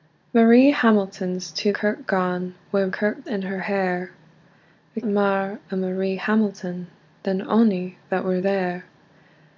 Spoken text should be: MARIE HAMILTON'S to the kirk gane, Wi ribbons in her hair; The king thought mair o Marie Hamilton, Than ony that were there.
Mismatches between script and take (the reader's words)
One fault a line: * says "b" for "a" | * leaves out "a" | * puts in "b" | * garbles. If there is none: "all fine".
* leaves out "the"
* says "kirk" for "ribbons"
* leaves out "king thought"